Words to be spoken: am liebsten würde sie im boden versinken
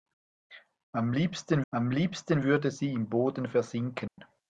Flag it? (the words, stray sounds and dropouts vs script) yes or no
yes